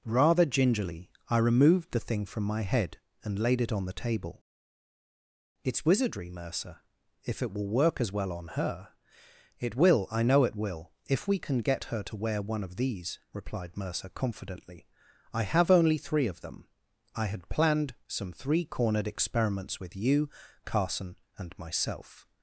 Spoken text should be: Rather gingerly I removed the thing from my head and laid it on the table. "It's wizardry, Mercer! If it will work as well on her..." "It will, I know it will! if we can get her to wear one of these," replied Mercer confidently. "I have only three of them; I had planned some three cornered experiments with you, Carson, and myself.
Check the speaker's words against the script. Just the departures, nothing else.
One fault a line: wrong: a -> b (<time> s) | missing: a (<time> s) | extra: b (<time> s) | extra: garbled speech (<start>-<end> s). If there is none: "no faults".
no faults